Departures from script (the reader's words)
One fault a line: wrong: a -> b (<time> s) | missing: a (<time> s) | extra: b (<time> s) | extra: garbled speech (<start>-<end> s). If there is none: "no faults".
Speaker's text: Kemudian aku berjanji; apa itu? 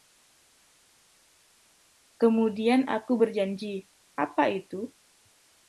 no faults